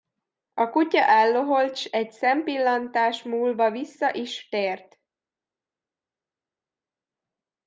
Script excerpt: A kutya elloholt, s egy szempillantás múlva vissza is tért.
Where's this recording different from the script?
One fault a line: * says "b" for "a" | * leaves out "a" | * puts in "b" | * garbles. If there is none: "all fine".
all fine